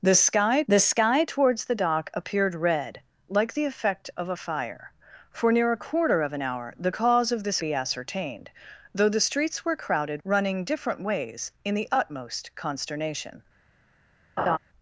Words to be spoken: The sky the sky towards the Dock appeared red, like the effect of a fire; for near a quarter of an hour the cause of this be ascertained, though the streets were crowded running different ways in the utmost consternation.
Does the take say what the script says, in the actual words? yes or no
yes